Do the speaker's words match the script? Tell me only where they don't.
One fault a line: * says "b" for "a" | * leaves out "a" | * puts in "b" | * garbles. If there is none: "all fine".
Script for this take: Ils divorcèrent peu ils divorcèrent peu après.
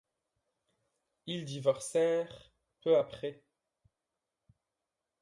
* leaves out "ils divorcèrent peu"